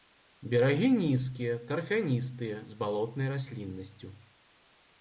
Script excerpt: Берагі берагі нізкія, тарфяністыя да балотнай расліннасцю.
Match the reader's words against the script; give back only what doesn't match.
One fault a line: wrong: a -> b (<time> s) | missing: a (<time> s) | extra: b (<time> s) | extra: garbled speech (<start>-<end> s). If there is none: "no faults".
missing: берагі (0.9 s)
wrong: да -> з (2.7 s)